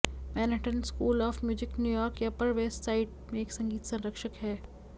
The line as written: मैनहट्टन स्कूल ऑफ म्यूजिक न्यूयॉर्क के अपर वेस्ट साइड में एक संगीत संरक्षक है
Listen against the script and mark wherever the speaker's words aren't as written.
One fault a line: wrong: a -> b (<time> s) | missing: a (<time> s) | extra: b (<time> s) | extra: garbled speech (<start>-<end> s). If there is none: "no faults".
no faults